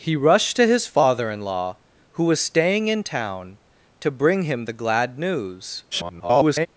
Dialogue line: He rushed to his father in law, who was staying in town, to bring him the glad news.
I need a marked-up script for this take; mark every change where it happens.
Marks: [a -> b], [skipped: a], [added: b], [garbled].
He rushed to his father in law, who was staying in town, to bring him the glad news. [garbled]